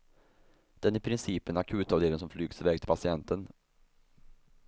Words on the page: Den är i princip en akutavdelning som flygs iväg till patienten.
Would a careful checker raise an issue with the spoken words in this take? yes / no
no